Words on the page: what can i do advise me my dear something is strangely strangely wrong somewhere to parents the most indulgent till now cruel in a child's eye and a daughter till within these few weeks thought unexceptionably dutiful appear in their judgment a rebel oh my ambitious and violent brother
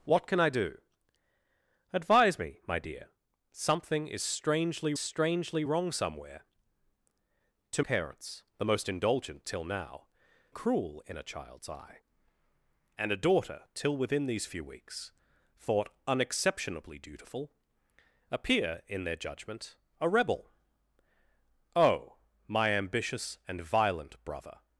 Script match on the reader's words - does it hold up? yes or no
yes